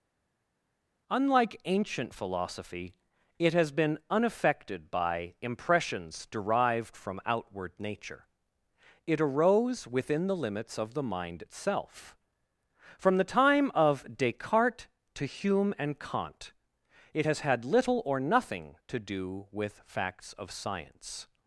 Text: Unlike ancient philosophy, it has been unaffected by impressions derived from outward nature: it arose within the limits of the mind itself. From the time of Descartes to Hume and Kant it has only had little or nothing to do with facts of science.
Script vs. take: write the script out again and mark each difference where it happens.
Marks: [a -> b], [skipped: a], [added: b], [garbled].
Unlike ancient philosophy, it has been unaffected by impressions derived from outward nature: it arose within the limits of the mind itself. From the time of Descartes to Hume and Kant it has [skipped: only] had little or nothing to do with facts of science.